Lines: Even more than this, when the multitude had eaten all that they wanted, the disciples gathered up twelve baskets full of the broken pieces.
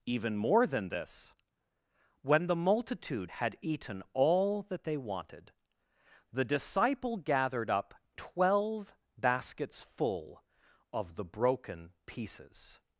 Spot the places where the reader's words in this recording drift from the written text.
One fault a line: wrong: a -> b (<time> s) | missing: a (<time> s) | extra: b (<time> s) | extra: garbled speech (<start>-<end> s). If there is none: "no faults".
wrong: disciples -> disciple (6.5 s)